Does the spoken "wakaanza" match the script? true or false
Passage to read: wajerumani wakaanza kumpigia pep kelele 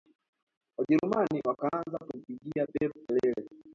true